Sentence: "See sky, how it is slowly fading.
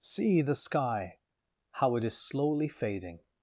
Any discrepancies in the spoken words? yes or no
yes